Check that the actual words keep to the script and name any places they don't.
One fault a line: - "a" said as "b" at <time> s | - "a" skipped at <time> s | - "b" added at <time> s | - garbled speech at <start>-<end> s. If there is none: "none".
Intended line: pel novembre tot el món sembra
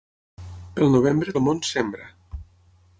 - "tot" skipped at 1.4 s